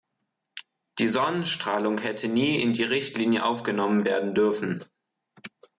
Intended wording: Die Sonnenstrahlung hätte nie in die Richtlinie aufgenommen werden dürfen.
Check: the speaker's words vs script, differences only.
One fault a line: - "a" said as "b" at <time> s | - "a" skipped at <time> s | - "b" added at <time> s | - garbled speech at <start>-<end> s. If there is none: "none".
none